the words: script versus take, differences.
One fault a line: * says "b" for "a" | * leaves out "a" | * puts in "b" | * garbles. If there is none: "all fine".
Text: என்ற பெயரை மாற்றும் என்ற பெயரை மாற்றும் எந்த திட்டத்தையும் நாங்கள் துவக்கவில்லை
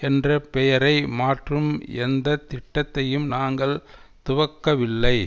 * leaves out "என்ற பெயரை மாற்றும்"